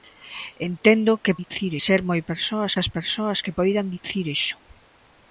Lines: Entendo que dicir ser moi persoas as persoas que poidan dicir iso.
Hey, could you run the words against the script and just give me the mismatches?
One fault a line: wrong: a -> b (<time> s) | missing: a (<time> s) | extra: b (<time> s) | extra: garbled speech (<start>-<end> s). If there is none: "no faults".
no faults